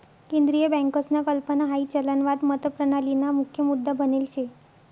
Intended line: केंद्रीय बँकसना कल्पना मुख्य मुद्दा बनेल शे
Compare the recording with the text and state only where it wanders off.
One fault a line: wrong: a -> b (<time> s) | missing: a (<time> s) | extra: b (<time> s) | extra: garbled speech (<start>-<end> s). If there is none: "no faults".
extra: हाई चलनवाद मतप्रणालीना (1.6 s)